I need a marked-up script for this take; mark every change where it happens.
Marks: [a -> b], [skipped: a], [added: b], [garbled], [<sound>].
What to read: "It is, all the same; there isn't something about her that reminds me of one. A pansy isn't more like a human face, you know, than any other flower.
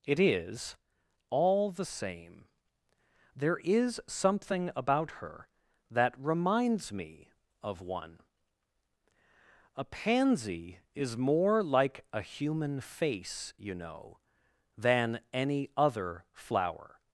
"It is, all the same; there [isn't -> is] something about her that reminds me of one. A pansy [isn't -> is] more like a human face, you know, than any other flower.